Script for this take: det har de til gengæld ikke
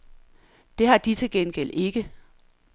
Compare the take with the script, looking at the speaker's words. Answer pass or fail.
pass